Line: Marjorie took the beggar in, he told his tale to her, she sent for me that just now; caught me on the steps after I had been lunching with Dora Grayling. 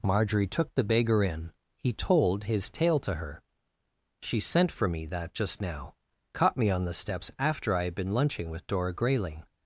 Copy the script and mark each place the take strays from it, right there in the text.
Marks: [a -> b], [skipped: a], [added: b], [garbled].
Marjorie took the beggar in, he told his tale to her, she sent for me that just now; caught me on the steps after I had been lunching with Dora Grayling.